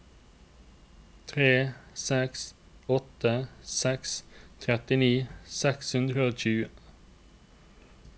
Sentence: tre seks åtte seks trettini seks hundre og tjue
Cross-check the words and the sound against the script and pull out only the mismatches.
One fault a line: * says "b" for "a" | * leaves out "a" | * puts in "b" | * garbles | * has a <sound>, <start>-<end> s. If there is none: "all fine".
all fine